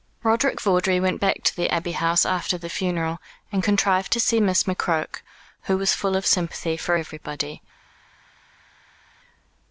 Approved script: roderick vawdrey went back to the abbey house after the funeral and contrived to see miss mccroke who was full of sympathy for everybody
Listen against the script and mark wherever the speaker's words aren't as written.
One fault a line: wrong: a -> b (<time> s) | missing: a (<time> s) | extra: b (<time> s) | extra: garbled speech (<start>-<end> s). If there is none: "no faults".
no faults